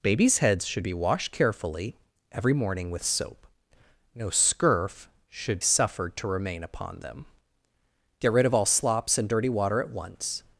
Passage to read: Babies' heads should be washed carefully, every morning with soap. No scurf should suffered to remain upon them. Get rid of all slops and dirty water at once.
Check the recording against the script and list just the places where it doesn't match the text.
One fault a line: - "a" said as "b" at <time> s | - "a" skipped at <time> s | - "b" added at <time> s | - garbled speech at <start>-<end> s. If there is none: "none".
none